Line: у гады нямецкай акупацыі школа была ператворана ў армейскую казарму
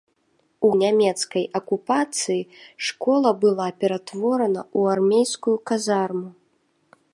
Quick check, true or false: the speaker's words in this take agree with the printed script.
false